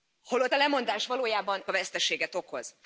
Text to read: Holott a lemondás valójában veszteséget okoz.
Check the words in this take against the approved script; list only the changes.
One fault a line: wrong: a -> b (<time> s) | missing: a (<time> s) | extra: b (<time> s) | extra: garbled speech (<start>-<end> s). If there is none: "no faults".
no faults